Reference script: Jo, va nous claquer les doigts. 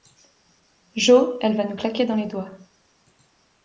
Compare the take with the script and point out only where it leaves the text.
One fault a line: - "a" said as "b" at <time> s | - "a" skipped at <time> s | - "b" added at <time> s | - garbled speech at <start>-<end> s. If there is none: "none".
- "elle" added at 1.4 s
- "dans" added at 2.0 s